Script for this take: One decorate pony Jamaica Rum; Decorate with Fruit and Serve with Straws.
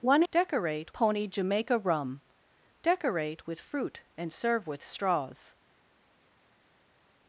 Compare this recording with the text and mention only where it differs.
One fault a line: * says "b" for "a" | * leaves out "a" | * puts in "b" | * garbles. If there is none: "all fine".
all fine